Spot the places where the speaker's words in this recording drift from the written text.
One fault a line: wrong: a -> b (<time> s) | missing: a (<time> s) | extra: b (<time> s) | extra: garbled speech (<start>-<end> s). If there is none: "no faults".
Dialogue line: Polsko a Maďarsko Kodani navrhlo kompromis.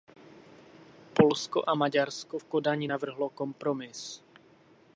extra: v (2.3 s)